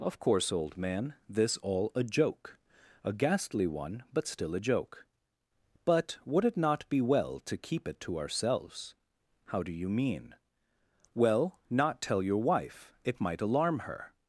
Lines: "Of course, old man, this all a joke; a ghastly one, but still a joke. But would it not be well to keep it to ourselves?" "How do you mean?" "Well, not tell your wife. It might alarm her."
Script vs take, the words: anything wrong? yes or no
no